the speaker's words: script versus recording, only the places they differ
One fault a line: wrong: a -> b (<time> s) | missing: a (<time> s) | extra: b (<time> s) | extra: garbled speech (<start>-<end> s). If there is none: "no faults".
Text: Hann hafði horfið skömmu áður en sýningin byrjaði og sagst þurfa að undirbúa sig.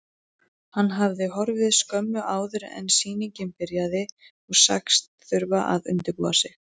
no faults